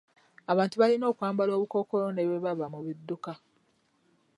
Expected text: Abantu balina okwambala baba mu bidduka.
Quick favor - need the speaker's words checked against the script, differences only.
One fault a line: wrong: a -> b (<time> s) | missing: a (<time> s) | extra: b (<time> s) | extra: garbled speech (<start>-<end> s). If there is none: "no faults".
extra: obukookolo ne bwe (1.5 s)